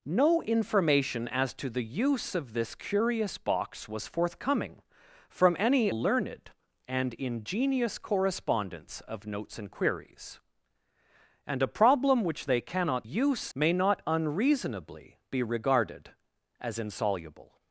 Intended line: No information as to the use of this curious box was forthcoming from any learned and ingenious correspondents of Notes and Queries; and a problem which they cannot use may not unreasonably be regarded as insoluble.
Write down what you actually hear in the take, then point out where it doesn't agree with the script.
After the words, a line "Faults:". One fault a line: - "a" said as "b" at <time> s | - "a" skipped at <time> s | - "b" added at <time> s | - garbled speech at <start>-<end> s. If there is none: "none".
No information as to the use of this curious box was forthcoming from any learned and ingenious correspondents of Notes and Queries; and a problem which they cannot use may not unreasonably be regarded as insoluble.
Faults:
none